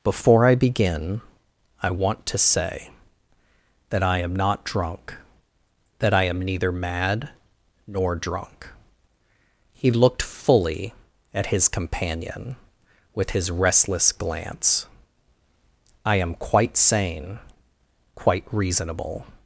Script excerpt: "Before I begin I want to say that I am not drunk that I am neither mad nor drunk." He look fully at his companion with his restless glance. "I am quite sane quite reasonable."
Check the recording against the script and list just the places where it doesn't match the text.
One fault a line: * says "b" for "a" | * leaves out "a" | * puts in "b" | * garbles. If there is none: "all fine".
* says "looked" for "look"